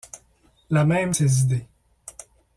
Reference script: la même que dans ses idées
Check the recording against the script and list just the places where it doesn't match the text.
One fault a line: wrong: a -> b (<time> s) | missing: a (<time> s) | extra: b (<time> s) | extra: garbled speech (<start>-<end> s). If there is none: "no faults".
missing: que dans (1.1 s)